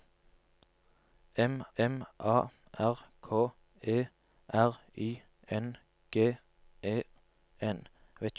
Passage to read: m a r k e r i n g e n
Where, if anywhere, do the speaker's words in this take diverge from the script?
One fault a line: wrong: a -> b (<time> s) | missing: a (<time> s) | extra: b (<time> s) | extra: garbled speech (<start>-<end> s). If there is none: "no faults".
extra: m (1.8 s)